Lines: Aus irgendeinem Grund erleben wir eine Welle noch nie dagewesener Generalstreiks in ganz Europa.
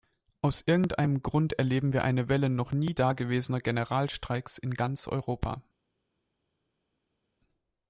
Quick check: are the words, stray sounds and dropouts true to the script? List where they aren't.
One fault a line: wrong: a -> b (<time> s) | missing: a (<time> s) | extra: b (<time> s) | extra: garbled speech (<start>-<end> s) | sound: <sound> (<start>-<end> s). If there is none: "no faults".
no faults